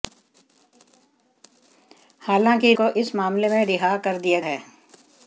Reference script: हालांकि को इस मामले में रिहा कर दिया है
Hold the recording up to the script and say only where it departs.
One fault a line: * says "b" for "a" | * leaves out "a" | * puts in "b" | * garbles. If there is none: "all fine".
all fine